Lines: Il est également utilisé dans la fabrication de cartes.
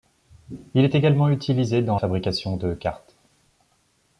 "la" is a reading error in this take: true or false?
true